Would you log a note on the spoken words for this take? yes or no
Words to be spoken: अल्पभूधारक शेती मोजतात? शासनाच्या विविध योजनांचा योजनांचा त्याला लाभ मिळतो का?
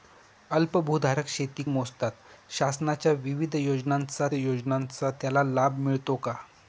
no